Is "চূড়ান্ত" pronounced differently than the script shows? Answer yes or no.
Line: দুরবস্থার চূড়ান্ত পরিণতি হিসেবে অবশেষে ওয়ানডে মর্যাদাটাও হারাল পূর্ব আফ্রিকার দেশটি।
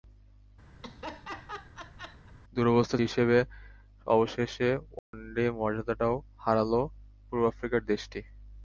yes